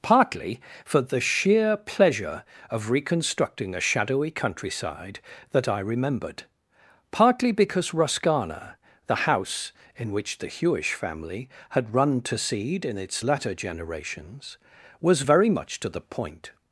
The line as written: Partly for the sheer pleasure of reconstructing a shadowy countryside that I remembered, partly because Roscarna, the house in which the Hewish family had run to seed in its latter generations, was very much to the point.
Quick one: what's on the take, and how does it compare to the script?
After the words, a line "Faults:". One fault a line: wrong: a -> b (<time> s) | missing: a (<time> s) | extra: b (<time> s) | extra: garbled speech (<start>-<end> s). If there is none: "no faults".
Partly for the sheer pleasure of reconstructing a shadowy countryside that I remembered, partly because Roscarna, the house in which the Hewish family had run to seed in its latter generations, was very much to the point.
Faults:
no faults